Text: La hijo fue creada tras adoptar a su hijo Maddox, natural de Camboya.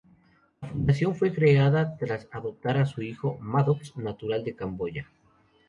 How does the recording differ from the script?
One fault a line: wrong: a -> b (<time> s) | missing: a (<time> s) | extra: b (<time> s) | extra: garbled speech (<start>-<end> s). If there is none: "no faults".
wrong: hijo -> fundación (0.7 s)